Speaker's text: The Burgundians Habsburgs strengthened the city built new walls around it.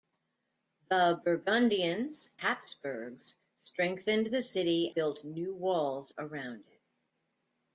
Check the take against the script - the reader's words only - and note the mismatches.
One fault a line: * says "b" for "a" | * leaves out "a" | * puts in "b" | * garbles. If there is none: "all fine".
all fine